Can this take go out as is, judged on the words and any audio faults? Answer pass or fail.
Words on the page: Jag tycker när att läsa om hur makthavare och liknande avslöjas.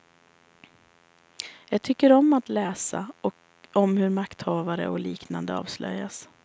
fail